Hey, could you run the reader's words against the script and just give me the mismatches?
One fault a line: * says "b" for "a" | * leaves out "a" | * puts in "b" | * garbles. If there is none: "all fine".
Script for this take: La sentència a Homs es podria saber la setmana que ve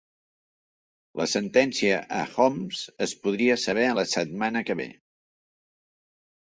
all fine